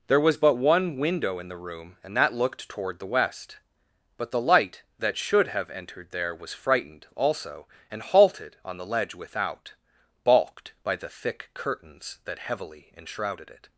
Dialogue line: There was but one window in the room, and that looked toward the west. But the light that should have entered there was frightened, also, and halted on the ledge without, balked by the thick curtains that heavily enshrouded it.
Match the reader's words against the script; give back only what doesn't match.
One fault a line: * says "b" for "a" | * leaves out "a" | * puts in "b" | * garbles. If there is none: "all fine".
all fine